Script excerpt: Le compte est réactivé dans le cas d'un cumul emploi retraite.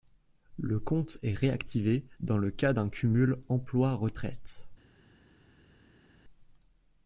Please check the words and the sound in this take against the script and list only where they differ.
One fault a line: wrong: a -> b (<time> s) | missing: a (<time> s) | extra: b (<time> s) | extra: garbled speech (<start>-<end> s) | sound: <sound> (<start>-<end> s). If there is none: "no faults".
no faults